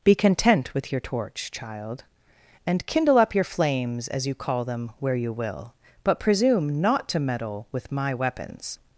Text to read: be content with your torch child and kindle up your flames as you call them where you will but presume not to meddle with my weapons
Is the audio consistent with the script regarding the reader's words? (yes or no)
yes